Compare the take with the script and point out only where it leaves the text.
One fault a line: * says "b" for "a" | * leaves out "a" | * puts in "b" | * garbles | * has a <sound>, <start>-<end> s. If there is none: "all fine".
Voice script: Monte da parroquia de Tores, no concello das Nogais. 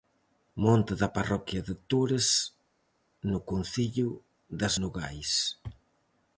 all fine